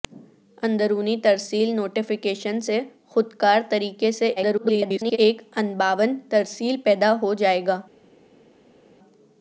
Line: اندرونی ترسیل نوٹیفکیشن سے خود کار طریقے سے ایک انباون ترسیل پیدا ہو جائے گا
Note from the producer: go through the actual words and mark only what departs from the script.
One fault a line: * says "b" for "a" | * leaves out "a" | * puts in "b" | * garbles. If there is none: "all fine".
* garbles